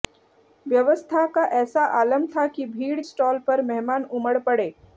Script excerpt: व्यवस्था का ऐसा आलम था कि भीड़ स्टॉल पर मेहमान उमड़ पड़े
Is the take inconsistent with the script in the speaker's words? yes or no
no